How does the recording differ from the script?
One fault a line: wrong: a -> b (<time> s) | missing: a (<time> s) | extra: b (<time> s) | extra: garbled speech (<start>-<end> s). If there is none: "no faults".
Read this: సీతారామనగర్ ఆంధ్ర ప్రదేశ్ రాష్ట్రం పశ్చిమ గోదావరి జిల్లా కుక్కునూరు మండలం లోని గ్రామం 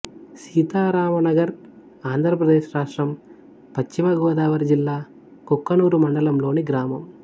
no faults